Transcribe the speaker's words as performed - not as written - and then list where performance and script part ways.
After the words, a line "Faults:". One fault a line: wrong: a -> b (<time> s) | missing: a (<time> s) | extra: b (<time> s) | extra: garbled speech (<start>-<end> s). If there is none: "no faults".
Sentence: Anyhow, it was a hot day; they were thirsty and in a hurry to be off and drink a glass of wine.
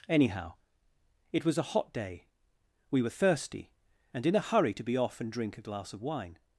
Anyhow, it was a hot day; we were thirsty and in a hurry to be off and drink a glass of wine.
Faults:
wrong: they -> we (2.9 s)